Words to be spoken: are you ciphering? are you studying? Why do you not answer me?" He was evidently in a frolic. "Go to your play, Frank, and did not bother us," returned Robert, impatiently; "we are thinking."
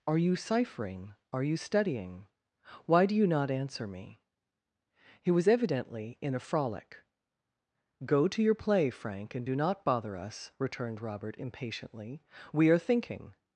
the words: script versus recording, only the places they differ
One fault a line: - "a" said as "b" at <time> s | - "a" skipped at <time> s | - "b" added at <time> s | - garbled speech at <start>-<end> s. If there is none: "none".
- "did" said as "do" at 9.4 s